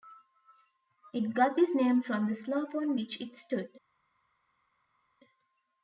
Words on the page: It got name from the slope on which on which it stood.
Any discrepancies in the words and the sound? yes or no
yes